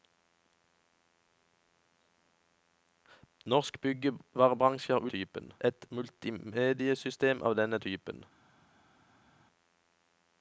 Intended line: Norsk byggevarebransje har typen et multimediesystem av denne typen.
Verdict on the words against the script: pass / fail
pass